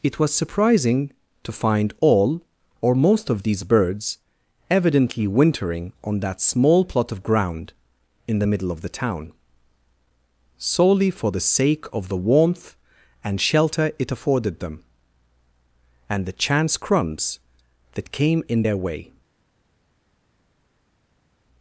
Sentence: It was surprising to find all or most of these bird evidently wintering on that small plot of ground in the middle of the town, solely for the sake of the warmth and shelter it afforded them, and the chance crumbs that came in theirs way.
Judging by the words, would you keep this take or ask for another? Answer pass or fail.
fail